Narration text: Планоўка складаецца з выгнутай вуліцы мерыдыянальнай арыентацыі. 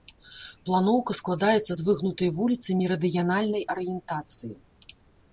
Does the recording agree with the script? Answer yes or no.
yes